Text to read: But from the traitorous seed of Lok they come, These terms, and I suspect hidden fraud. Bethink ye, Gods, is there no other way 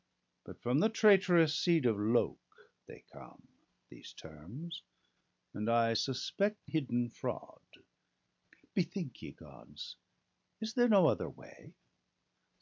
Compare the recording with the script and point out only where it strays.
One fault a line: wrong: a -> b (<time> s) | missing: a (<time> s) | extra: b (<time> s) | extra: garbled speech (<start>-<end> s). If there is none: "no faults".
no faults